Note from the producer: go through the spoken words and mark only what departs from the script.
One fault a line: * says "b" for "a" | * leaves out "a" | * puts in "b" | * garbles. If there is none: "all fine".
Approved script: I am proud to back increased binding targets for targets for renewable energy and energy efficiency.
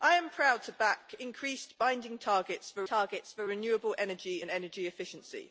all fine